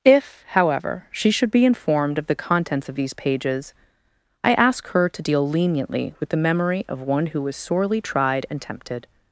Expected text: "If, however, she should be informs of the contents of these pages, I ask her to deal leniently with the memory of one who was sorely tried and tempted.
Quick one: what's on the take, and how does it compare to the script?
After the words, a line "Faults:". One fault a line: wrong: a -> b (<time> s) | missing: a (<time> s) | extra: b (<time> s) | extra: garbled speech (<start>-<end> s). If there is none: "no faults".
"If, however, she should be informed of the contents of these pages, I ask her to deal leniently with the memory of one who was sorely tried and tempted.
Faults:
wrong: informs -> informed (1.6 s)